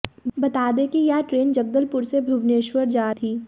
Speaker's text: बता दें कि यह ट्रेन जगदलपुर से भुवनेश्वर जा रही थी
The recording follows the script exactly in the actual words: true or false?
false